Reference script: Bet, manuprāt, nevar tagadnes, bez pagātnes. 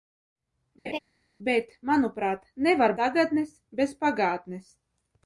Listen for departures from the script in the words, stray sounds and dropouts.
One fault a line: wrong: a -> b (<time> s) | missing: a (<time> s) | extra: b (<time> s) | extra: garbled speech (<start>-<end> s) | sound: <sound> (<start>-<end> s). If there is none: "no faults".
sound: laugh (0.8-1.0 s)